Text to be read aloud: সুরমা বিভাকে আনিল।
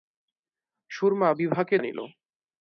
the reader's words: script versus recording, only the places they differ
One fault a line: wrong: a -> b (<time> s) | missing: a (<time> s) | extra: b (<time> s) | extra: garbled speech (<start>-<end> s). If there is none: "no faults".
no faults